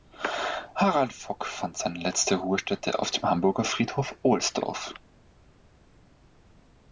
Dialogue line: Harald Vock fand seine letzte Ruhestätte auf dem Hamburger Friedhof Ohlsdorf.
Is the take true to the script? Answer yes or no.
yes